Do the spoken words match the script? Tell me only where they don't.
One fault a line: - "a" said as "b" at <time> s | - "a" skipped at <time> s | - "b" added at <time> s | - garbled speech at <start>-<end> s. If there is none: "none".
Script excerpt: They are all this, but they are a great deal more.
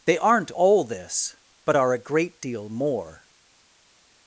- "are" said as "aren't" at 0.2 s
- "they" skipped at 1.8 s